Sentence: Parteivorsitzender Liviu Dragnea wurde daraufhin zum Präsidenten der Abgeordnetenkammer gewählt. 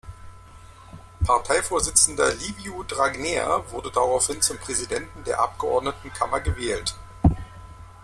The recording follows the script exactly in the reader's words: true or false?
true